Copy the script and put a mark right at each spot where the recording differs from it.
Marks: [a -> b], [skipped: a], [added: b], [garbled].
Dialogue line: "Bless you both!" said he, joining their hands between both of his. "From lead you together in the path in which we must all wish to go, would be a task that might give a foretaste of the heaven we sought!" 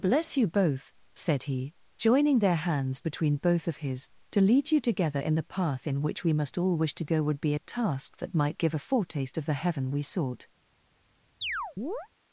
"Bless you both!" said he, joining their hands between both of his. ["From -> To] lead you together in the path in which we must all wish to go, would be a task that might give a foretaste of the heaven we sought!"